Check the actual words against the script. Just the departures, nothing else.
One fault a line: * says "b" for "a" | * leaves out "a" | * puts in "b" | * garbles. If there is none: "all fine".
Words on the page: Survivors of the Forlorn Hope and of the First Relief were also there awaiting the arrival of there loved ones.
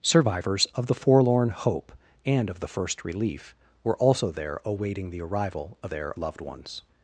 all fine